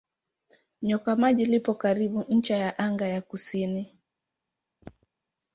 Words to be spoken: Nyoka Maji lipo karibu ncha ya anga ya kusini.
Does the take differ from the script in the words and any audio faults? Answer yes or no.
yes